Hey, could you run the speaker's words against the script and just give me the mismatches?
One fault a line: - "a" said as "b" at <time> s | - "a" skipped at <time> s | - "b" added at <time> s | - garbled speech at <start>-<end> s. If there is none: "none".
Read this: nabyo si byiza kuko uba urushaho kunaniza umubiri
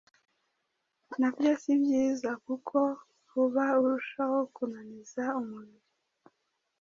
none